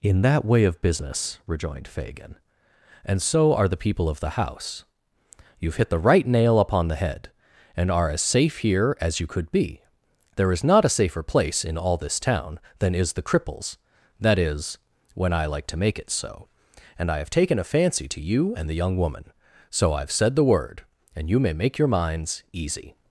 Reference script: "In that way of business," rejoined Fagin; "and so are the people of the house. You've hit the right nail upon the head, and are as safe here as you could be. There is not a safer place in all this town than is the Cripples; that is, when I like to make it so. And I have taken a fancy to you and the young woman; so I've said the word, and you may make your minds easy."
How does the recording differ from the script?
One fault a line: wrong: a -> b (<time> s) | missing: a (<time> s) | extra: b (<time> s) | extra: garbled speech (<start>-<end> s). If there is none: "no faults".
no faults